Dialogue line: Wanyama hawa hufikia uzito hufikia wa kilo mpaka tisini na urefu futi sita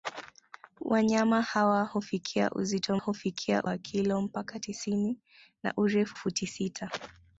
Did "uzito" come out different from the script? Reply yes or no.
no